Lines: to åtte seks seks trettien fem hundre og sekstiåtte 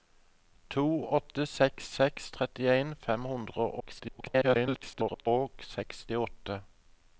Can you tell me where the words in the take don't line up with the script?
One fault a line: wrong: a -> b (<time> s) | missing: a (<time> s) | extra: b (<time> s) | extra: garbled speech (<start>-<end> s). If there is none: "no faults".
extra: garbled speech (3.8-5.3 s)